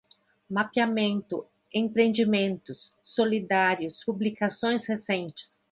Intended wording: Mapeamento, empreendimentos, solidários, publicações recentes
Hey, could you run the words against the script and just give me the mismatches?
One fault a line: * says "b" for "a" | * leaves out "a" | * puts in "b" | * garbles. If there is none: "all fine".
all fine